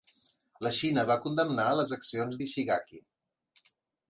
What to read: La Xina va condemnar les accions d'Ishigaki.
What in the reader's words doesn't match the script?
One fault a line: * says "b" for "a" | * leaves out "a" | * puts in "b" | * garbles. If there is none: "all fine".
all fine